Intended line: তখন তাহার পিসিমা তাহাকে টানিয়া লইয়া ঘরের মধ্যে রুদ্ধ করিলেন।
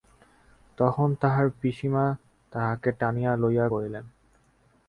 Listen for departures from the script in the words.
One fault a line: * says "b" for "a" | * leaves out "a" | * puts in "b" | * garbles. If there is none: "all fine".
* leaves out "ঘরের মধ্যে রুদ্ধ"